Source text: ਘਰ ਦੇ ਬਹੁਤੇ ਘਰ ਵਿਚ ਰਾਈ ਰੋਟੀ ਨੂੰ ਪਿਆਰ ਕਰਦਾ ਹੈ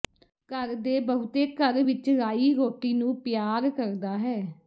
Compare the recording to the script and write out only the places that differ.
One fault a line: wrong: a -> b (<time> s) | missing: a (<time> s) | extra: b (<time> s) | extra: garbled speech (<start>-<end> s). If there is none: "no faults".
no faults